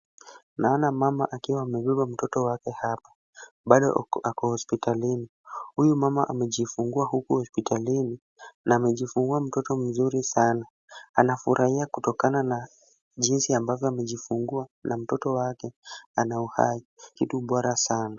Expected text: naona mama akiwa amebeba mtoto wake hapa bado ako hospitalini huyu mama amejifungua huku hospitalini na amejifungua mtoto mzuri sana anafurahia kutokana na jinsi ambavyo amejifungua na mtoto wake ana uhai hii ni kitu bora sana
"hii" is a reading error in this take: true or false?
true